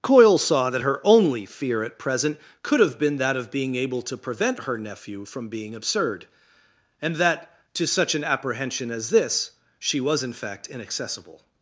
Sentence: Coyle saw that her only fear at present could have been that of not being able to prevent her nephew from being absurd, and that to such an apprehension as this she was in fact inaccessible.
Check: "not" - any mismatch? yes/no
yes